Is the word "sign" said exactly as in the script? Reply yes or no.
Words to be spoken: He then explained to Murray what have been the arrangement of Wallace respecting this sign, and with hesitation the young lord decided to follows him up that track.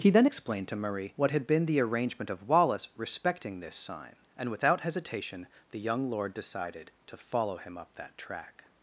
yes